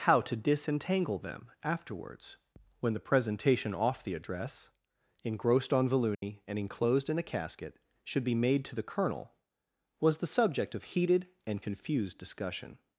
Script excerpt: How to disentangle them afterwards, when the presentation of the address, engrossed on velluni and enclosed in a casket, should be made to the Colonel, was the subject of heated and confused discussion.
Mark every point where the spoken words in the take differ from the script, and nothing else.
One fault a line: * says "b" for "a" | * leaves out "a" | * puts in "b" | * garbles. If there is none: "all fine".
* says "off" for "of"